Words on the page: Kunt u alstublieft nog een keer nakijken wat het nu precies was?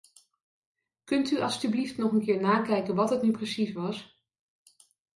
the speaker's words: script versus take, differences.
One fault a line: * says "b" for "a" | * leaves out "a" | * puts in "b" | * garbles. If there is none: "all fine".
all fine